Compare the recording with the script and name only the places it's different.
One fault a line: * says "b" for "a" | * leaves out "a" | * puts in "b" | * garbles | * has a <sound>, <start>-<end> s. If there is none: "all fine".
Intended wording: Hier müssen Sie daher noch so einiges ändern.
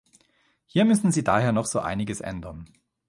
all fine